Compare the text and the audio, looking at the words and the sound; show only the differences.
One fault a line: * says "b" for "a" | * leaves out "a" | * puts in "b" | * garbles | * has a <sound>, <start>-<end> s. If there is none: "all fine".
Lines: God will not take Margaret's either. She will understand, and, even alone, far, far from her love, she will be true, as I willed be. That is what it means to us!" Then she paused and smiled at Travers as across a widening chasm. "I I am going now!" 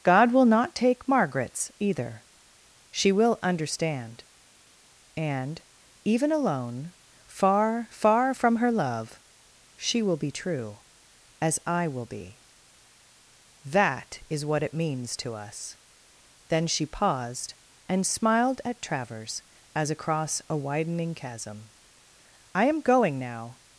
* says "will" for "willed"
* leaves out "I"